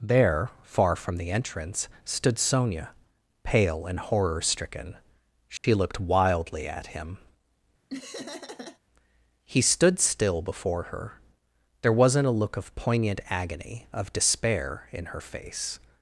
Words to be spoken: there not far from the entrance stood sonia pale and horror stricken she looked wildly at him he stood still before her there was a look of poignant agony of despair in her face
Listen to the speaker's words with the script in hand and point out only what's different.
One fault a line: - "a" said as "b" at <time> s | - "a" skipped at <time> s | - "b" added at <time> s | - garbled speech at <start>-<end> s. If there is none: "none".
- "not" skipped at 0.5 s
- "was" said as "wasn't" at 11.9 s